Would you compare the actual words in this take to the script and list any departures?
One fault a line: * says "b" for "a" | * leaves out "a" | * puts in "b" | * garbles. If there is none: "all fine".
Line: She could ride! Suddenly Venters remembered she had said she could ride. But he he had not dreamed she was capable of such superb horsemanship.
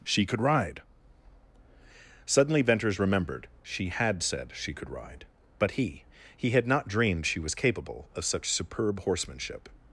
all fine